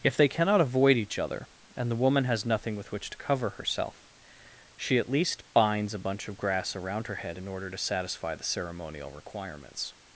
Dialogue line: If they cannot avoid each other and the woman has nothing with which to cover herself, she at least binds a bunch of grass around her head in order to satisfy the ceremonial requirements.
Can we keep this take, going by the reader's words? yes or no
yes